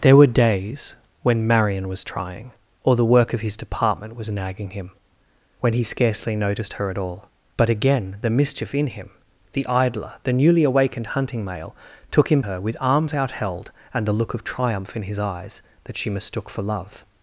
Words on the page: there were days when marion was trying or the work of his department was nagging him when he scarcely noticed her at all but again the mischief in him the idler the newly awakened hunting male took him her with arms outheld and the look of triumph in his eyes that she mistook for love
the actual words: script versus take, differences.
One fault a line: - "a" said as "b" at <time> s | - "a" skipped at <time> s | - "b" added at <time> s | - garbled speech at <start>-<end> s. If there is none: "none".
none